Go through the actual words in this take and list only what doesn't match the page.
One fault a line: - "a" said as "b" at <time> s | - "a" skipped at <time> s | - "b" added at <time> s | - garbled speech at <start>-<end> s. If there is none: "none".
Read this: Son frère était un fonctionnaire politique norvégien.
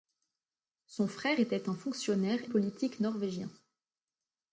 none